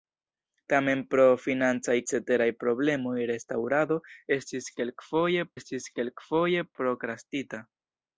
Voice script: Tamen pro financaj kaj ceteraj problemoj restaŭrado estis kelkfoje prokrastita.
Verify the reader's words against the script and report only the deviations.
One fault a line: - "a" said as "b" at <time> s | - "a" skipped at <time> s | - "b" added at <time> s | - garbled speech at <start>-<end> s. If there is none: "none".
- "kaj" skipped at 2.0 s
- "estis kelkfoje" added at 5.6 s